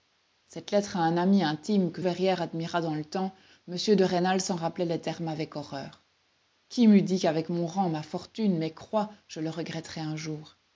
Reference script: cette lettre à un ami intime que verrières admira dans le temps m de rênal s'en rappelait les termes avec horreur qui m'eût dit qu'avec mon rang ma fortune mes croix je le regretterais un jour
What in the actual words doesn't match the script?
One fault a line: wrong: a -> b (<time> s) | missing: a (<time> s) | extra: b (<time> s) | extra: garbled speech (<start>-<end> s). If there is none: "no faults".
no faults